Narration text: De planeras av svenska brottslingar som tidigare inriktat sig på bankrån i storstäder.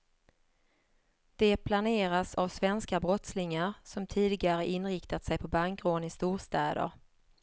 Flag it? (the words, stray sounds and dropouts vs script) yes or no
no